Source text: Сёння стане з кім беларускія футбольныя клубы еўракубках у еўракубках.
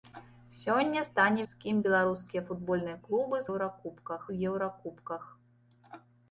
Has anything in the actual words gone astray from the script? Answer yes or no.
no